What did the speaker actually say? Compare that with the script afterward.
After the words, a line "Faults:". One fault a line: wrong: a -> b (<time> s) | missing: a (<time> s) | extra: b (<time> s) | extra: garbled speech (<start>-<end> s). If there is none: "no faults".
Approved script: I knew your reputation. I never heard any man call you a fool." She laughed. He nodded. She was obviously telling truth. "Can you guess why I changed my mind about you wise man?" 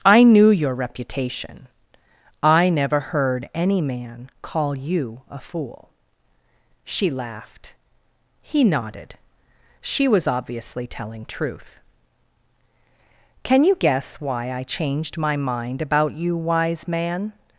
I knew your reputation. I never heard any man call you a fool." She laughed. He nodded. She was obviously telling truth. "Can you guess why I changed my mind about you wise man?"
Faults:
no faults